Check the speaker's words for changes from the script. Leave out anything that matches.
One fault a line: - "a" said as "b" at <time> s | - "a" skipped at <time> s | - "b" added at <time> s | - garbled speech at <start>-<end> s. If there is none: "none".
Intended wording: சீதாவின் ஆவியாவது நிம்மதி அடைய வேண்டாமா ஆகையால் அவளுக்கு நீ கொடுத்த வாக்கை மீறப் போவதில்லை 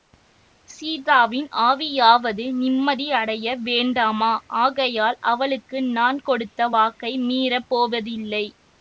- "நீ" said as "நான்" at 5.9 s